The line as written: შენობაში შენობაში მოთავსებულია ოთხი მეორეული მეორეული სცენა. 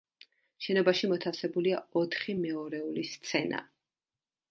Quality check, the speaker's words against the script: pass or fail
fail